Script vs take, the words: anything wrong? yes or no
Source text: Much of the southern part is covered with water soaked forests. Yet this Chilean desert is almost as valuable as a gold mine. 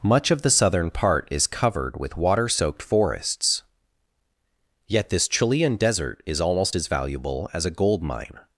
no